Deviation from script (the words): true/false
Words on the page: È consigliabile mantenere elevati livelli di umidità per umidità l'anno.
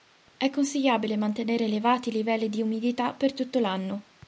true